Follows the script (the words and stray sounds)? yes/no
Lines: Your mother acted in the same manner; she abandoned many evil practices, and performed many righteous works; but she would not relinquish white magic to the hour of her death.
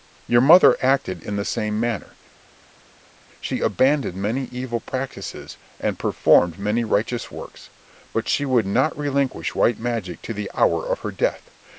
yes